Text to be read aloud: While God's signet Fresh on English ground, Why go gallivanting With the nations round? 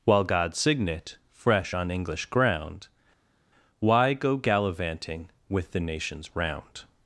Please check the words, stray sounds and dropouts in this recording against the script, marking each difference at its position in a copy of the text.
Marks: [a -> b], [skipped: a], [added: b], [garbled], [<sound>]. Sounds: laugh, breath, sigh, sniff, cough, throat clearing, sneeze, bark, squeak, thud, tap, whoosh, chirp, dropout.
While God's signet Fresh on English ground, Why go gallivanting With the nations round?